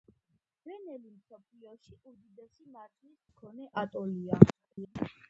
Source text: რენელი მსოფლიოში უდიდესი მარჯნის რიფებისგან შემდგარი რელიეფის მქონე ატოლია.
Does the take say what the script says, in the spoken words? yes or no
no